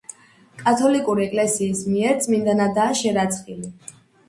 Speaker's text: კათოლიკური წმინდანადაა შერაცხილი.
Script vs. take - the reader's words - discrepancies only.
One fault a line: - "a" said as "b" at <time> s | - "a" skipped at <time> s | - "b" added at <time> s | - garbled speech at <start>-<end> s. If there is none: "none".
- "ეკლესიის მიერ" added at 1.2 s